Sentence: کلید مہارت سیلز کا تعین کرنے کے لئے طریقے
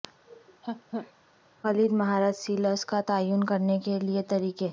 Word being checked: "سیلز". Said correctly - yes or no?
yes